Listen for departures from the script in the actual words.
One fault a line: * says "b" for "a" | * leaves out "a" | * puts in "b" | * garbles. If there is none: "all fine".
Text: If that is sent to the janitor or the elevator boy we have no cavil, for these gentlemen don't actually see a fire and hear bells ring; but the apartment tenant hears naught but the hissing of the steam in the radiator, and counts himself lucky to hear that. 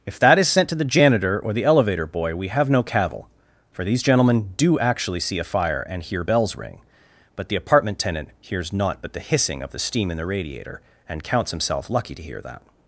* says "do" for "don't"